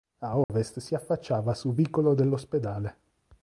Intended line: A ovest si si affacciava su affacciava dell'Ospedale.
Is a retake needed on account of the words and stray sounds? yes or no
yes